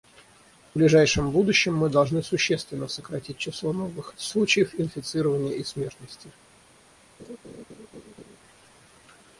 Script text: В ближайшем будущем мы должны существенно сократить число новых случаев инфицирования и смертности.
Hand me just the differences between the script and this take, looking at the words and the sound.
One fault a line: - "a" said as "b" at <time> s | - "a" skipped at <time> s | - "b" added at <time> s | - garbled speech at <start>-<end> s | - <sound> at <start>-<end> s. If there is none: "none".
- laugh at 7.2-8.4 s